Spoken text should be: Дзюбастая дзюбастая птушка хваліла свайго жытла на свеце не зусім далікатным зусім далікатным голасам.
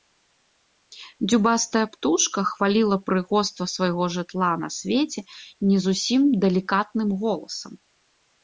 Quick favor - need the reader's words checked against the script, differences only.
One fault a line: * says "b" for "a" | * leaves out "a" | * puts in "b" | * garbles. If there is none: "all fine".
* leaves out "дзюбастая"
* puts in "прыгоства"
* leaves out "зусім далікатным"